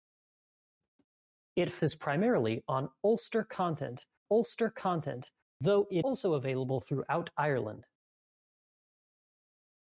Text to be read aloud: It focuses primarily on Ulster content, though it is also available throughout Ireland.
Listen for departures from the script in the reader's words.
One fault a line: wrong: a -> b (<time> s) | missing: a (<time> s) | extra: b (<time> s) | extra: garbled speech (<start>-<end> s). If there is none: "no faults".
extra: Ulster content (4.3 s)
missing: is (6.0 s)